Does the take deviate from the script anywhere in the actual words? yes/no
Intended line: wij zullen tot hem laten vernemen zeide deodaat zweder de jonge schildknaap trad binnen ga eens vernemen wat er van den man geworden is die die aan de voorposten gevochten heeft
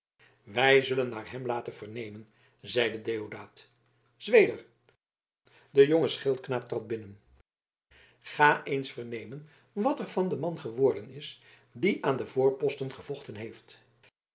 yes